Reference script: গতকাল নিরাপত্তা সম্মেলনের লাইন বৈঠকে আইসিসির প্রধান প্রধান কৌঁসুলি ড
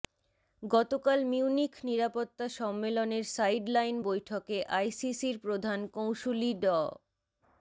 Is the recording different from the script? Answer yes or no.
yes